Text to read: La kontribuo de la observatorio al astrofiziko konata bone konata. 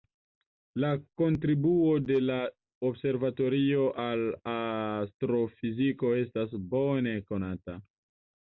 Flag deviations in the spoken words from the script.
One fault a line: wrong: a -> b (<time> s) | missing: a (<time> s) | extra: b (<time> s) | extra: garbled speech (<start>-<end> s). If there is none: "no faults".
wrong: konata -> estas (6.2 s)